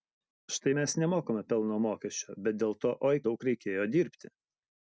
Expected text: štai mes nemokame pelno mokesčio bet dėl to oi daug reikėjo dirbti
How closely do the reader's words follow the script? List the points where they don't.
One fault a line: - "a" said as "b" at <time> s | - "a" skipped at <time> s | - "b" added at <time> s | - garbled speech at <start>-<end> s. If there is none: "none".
none